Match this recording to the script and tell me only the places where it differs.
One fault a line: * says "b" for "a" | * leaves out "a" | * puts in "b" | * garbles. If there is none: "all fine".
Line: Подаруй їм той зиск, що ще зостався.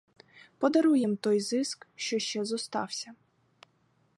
all fine